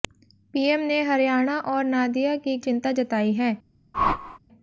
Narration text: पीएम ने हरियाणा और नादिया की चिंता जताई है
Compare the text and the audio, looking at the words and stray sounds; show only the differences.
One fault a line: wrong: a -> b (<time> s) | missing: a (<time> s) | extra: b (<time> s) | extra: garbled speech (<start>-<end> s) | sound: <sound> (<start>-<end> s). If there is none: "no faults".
sound: whoosh (3.9-4.4 s)